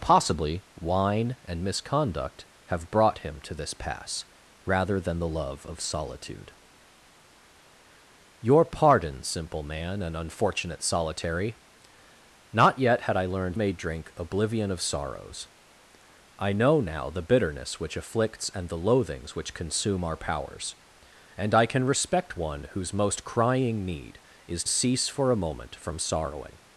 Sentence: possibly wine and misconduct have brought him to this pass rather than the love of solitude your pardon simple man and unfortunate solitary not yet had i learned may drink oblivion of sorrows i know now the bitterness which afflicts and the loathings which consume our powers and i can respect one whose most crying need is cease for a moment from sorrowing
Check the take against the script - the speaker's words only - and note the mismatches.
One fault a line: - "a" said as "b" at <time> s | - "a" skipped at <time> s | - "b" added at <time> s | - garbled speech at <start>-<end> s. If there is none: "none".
none